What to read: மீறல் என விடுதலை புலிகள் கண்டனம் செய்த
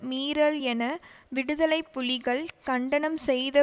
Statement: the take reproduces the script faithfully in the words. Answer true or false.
true